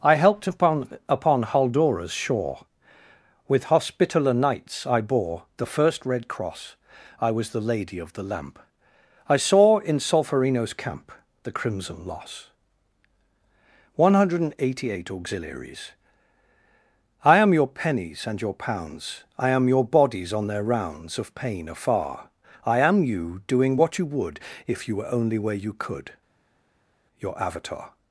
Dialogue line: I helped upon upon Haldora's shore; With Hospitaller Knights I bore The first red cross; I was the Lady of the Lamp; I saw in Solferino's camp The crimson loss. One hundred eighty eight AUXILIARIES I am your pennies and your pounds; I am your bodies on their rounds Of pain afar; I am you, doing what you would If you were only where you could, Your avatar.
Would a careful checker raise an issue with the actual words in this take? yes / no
no